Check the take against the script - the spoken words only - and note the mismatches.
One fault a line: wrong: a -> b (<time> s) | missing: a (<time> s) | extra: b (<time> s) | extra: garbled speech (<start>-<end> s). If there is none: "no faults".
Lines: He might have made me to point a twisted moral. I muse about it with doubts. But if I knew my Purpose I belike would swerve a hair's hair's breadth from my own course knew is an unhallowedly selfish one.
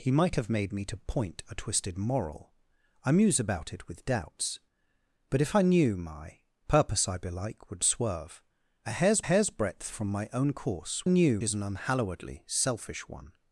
no faults